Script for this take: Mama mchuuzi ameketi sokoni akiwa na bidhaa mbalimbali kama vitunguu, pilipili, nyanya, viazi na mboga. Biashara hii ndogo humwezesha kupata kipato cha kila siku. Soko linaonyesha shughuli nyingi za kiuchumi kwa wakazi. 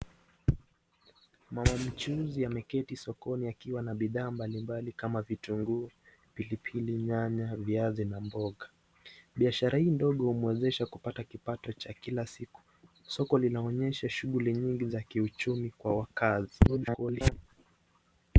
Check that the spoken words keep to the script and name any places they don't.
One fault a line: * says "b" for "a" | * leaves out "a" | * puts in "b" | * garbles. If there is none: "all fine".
* garbles